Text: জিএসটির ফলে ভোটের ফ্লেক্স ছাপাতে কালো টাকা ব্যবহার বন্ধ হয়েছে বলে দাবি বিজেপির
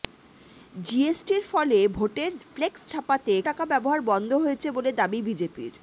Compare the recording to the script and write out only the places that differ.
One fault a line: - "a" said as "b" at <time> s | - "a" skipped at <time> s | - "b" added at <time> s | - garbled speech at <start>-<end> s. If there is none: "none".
- "কালো" skipped at 3.3 s